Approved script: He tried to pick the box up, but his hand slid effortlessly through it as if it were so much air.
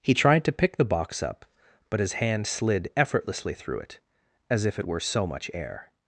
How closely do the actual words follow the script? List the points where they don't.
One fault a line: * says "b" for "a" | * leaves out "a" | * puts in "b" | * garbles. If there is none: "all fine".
all fine